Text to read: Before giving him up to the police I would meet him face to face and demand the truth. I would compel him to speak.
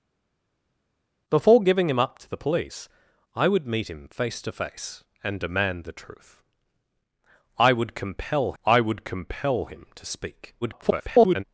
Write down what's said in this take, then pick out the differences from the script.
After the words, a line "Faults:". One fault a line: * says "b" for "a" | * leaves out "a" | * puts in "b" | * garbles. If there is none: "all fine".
Before giving him up to the police I would meet him face to face and demand the truth. I would compel I would compel him to speak. [garbled]
Faults:
* puts in "I would compel"
* garbles